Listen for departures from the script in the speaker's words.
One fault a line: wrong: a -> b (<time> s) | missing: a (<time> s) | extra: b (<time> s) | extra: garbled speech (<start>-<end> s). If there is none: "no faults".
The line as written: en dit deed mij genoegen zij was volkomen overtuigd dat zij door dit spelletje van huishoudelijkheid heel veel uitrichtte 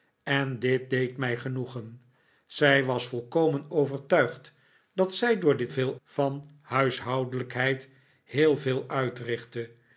wrong: spelletje -> veel (5.7 s)